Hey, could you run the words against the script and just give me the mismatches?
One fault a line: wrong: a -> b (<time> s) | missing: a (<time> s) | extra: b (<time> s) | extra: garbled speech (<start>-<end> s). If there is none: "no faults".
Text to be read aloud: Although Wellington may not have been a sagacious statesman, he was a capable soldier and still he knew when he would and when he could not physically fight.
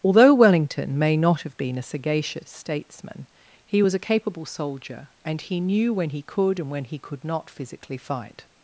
missing: still (5.4 s)
wrong: would -> could (6.2 s)